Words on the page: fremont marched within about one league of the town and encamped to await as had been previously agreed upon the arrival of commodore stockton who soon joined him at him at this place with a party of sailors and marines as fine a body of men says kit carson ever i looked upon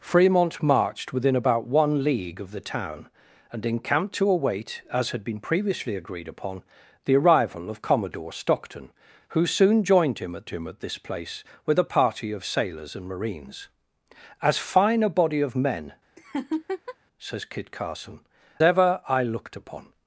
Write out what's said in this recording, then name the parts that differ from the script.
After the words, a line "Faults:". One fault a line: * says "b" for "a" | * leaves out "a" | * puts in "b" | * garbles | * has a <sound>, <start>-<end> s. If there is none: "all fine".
fremont marched within about one league of the town and encamped to await as had been previously agreed upon the arrival of commodore stockton who soon joined him at him at this place with a party of sailors and marines as fine a body of men says kit carson ever i looked upon
Faults:
* has a laugh, 16.2-17.0 s